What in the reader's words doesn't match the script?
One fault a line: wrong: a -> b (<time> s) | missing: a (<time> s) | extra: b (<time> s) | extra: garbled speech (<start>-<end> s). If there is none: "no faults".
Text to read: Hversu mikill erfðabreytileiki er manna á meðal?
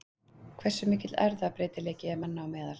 no faults